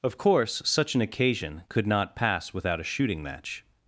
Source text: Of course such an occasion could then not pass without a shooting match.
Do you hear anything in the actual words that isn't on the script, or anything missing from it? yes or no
yes